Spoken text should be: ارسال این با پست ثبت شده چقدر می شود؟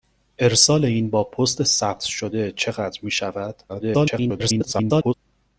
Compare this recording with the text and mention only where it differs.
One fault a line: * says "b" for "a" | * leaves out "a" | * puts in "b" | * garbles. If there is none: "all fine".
* garbles